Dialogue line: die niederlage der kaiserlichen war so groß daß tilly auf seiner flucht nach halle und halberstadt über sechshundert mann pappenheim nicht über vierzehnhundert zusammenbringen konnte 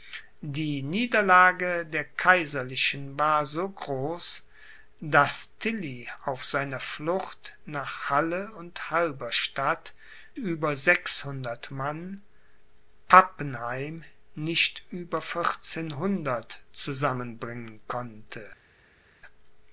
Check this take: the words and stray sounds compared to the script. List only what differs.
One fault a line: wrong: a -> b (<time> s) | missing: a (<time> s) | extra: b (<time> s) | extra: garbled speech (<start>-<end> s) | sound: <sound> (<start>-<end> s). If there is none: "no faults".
no faults